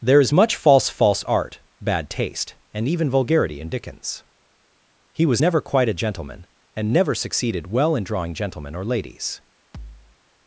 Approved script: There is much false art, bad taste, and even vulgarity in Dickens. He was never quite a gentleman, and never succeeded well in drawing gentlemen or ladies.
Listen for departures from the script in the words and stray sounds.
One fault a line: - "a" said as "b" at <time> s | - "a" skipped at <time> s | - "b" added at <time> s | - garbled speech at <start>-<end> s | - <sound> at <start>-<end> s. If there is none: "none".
- "false" added at 0.9 s
- thud at 9.7-10.2 s